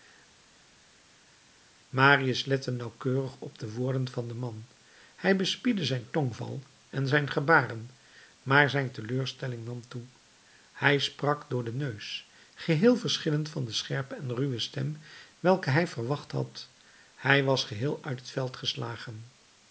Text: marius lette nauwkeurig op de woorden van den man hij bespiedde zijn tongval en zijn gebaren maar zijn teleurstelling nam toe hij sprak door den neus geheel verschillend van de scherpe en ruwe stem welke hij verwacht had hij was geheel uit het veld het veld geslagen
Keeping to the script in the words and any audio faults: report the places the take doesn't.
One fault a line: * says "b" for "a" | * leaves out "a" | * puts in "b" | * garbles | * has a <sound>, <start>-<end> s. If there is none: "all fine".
* leaves out "het veld"